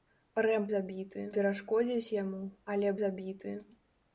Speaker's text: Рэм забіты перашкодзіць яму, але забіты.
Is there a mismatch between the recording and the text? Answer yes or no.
no